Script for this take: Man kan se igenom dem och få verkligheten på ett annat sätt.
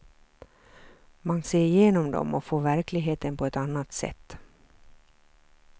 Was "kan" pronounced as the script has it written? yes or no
no